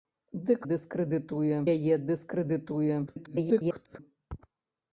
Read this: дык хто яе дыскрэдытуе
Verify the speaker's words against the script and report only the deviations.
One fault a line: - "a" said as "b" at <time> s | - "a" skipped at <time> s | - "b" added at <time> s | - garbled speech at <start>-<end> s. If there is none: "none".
- "хто" said as "дыскрэдытуе" at 0.7 s
- garbled speech at 3.1-4.0 s